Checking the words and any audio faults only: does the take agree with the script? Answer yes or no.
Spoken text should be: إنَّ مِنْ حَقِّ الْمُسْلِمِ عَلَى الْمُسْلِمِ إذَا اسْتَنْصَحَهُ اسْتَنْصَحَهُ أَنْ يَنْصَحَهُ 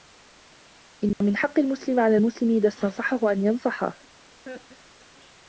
no